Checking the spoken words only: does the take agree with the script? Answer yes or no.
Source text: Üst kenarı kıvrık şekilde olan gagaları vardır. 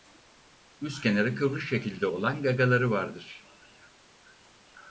yes